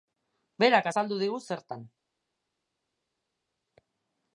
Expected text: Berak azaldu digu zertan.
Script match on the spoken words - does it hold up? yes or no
yes